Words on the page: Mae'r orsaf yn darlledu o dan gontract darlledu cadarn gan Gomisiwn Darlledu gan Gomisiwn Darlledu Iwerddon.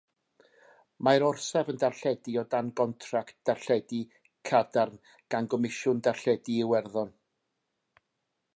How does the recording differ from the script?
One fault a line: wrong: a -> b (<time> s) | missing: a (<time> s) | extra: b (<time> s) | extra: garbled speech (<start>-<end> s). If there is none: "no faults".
missing: gan Gomisiwn Darlledu (6.6 s)